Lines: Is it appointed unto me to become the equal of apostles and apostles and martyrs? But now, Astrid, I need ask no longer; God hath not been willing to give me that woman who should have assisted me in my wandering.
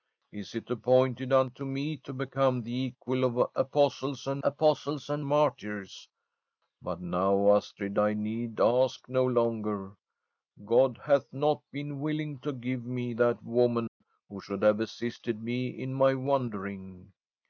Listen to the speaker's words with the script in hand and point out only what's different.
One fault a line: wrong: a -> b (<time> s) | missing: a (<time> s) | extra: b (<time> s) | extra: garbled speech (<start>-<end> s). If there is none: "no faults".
no faults